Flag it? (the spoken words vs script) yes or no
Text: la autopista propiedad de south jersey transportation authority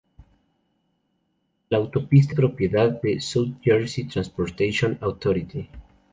no